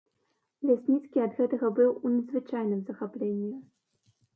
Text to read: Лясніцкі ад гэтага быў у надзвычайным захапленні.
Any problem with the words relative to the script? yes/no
no